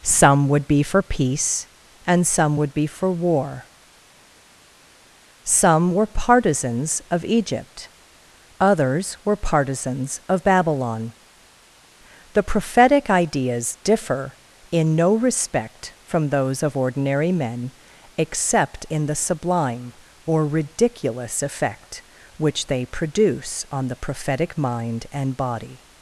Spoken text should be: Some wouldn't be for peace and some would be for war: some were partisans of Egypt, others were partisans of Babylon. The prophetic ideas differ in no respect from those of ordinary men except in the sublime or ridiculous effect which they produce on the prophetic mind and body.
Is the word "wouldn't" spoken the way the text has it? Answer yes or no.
no